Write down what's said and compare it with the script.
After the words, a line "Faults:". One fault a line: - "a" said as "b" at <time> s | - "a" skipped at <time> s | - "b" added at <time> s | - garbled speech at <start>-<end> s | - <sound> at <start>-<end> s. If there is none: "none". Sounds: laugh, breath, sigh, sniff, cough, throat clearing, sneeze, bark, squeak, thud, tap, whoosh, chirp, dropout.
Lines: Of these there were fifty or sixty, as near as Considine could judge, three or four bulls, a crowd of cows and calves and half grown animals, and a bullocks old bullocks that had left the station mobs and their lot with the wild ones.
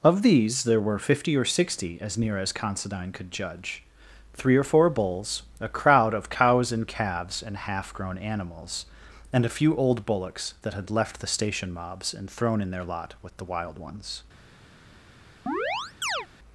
Of these there were fifty or sixty, as near as Considine could judge, three or four bulls, a crowd of cows and calves and half grown animals, and a few old bullocks that had left the station mobs and thrown in their lot with the wild ones.
Faults:
- "bullocks" said as "few" at 9.6 s
- "thrown in" added at 12.3 s
- chirp at 15.5-16.3 s